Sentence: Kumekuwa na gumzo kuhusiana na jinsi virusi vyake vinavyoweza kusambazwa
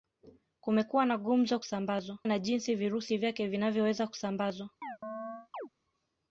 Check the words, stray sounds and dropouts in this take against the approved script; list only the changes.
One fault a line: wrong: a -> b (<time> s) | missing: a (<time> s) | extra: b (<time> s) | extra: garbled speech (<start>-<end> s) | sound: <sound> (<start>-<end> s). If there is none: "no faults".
wrong: kuhusiana -> kusambazwa (1.6 s)
sound: chirp (4.8-5.7 s)